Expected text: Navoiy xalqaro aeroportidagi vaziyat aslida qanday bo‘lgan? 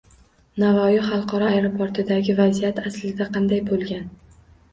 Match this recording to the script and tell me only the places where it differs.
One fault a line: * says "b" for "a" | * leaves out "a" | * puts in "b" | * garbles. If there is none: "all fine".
all fine